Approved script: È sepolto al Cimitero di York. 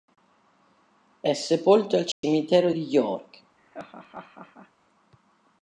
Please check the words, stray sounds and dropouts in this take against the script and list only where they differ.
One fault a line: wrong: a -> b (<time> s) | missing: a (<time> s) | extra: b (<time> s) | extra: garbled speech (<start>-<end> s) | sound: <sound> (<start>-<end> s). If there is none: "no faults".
sound: dropout (2.1-2.2 s)
sound: laugh (3.6-4.7 s)